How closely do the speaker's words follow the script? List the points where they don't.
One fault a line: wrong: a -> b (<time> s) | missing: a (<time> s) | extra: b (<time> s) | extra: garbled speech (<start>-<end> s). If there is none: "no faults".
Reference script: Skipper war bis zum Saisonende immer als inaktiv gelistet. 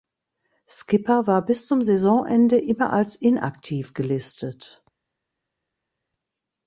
no faults